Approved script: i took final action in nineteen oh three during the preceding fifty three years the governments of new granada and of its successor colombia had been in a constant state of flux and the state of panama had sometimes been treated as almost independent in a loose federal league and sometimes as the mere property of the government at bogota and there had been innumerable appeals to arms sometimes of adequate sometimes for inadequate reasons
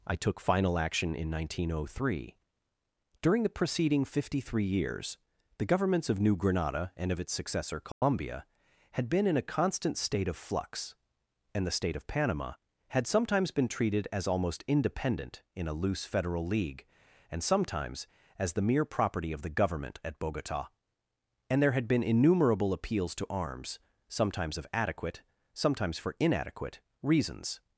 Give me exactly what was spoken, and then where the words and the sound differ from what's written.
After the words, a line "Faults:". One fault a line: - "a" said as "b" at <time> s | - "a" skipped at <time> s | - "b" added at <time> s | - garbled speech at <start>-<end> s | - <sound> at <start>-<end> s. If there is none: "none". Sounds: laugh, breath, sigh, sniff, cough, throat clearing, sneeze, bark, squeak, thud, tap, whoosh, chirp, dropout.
i took final action in nineteen oh three during the preceding fifty three years the governments of new granada and of its successor colombia had been in a constant state of flux and the state of panama had sometimes been treated as almost independent in a loose federal league and sometimes as the mere property of the government at bogota and there had been innumerable appeals to arms sometimes of adequate sometimes for inadequate reasons
Faults:
- dropout at 7.9-8.0 s